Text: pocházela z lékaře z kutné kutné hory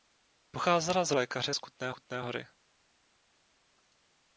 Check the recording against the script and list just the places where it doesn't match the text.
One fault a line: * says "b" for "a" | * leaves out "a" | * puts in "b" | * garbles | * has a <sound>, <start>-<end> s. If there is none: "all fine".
all fine